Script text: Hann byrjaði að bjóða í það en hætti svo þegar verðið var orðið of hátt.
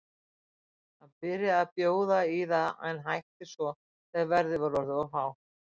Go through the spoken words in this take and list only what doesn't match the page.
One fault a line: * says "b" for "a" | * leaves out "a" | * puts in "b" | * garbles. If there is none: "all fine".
all fine